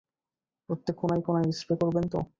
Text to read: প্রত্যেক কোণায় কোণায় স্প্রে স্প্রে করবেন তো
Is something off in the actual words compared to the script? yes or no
yes